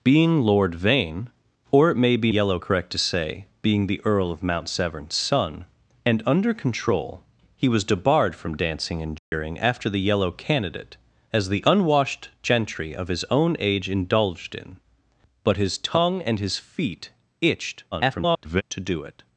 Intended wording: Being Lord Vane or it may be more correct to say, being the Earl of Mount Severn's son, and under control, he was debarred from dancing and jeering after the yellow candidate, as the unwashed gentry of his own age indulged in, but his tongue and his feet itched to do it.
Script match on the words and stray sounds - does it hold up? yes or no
no